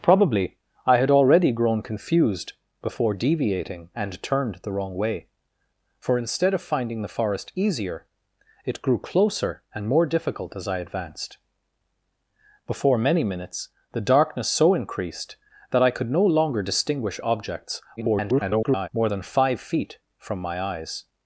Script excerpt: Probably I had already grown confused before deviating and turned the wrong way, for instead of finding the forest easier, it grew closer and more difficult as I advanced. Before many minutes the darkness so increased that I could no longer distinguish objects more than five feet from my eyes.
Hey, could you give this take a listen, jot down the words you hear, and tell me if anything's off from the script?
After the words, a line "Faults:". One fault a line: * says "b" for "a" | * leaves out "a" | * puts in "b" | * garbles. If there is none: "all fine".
Probably I had already grown confused before deviating and turned the wrong way, for instead of finding the forest easier, it grew closer and more difficult as I advanced. Before many minutes the darkness so increased that I could no longer distinguish objects [garbled] more than five feet from my eyes.
Faults:
* garbles